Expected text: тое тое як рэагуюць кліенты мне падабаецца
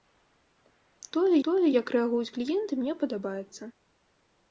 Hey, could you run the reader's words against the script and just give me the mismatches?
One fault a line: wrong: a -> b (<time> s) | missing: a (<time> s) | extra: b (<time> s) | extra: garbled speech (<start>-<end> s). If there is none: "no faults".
no faults